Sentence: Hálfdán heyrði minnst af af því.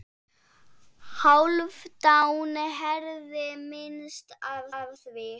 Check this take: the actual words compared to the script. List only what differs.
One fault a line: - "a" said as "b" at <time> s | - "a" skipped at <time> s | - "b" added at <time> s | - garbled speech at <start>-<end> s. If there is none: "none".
none